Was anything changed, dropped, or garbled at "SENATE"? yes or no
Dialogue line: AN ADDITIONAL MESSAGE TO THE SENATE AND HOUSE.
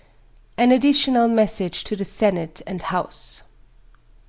no